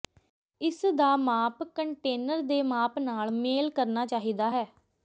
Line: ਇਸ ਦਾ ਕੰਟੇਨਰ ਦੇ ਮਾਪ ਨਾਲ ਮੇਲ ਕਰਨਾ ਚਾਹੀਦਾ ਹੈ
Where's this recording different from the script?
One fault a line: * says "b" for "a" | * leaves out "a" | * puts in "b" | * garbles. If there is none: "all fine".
* puts in "ਮਾਪ"